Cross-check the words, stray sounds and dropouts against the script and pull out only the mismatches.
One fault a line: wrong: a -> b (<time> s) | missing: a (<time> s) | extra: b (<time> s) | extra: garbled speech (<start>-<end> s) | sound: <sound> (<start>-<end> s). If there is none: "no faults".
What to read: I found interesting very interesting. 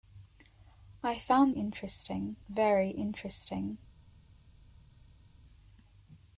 no faults